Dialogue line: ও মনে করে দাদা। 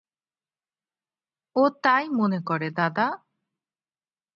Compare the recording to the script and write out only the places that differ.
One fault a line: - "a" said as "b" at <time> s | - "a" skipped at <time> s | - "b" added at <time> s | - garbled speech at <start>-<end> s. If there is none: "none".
- "তাই" added at 1.8 s